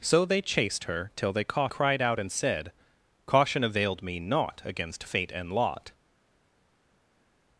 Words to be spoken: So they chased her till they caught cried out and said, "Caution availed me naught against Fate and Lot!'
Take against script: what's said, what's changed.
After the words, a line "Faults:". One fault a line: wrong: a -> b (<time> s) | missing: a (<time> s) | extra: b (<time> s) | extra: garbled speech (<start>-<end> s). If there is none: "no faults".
So they chased her till they caught cried out and said, "Caution availed me naught against Fate and Lot!'
Faults:
no faults